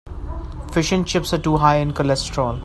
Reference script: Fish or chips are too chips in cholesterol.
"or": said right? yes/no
no